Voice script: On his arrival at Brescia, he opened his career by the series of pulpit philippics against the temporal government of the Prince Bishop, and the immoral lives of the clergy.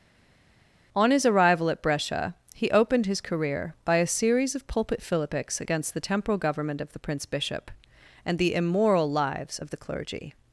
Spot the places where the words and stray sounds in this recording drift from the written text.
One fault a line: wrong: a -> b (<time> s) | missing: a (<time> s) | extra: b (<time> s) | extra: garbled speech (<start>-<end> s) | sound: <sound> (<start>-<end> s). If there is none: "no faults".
wrong: the -> a (4.0 s)